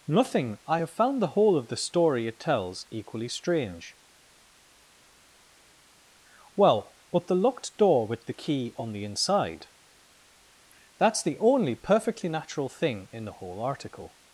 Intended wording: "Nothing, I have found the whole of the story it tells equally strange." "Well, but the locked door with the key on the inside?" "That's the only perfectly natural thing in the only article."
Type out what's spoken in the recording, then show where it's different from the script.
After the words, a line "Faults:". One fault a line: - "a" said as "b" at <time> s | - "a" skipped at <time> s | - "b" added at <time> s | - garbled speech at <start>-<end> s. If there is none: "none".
"Nothing, I have found the whole of the story it tells equally strange." "Well, but the locked door with the key on the inside?" "That's the only perfectly natural thing in the whole article."
Faults:
- "only" said as "whole" at 13.3 s